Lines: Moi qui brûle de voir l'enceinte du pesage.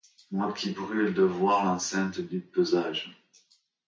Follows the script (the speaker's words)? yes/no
yes